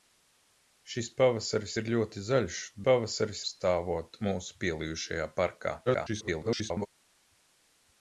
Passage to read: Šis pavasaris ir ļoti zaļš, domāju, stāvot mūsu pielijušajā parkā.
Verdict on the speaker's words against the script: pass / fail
fail